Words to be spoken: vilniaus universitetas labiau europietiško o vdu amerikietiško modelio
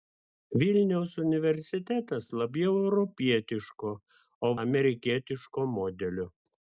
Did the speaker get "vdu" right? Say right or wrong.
wrong